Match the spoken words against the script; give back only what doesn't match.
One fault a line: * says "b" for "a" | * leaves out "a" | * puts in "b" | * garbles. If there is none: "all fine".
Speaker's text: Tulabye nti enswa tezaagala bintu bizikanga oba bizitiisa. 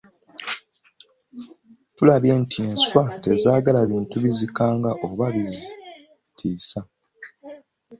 all fine